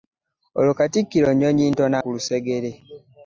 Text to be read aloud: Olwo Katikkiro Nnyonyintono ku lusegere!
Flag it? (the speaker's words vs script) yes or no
no